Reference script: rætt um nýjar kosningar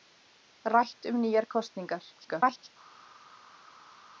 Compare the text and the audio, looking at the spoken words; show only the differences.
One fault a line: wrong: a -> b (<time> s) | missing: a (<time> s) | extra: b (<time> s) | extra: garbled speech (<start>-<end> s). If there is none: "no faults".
extra: garbled speech (2.2-2.7 s)